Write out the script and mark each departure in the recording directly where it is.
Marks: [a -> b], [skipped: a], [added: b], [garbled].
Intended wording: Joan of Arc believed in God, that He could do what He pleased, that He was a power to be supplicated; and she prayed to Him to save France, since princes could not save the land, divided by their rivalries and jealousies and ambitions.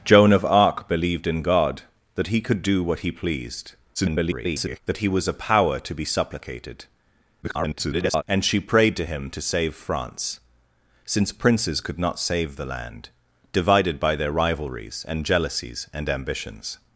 Joan of Arc believed in God, that He could do what He pleased, [garbled] that He was a power to be supplicated; [garbled] and she prayed to Him to save France, since princes could not save the land, divided by their rivalries and jealousies and ambitions.